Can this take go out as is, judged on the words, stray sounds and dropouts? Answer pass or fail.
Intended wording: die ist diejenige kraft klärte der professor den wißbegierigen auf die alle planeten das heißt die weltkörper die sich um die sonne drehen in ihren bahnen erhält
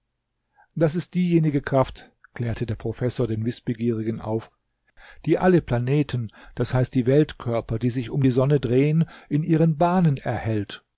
fail